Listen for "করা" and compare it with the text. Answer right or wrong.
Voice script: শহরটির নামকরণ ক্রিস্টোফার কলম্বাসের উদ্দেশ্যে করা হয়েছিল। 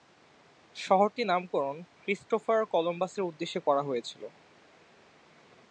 right